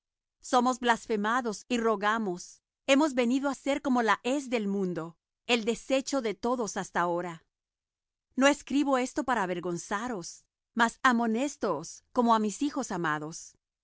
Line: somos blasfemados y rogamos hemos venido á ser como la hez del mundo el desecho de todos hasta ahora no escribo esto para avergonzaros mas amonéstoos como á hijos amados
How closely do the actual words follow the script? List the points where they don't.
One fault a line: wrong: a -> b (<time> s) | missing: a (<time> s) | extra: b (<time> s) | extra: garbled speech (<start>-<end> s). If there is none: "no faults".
extra: mis (12.4 s)